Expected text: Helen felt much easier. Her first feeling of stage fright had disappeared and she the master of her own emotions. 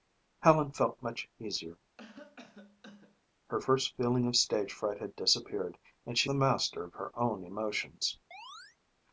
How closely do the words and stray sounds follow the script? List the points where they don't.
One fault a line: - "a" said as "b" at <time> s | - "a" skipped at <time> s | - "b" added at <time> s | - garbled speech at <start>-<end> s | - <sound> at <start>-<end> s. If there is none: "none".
- cough at 2.0-3.2 s
- chirp at 8.3-8.8 s